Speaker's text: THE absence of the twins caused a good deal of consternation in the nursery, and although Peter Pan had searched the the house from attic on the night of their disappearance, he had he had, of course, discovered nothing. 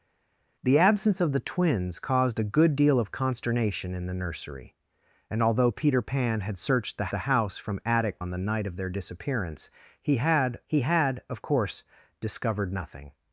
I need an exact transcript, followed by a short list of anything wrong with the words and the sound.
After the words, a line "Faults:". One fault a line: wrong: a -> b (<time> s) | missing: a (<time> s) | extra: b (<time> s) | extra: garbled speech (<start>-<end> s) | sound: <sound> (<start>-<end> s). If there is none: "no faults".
THE absence of the twins caused a good deal of consternation in the nursery, and although Peter Pan had searched the the house from attic on the night of their disappearance, he had he had, of course, discovered nothing.
Faults:
no faults